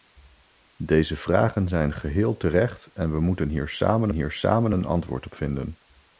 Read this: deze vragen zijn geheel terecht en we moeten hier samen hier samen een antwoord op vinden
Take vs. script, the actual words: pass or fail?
pass